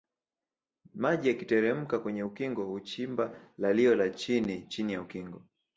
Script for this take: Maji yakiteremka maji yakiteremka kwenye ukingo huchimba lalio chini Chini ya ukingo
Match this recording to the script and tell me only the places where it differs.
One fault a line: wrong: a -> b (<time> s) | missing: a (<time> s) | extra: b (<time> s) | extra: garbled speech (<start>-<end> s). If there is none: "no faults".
missing: maji yakiteremka (2.0 s)
extra: la (4.0 s)